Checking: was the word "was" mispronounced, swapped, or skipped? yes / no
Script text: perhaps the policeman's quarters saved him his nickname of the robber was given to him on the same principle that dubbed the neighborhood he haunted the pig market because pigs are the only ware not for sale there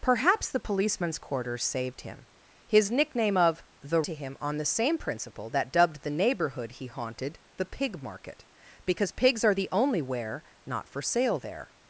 yes